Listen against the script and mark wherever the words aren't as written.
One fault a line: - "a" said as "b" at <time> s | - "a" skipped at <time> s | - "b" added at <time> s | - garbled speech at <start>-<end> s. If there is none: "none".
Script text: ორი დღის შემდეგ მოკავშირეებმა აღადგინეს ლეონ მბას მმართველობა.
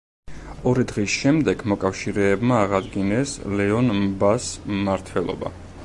none